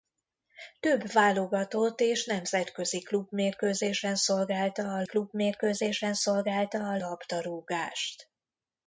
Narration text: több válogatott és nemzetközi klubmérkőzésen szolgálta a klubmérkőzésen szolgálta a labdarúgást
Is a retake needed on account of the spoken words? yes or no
no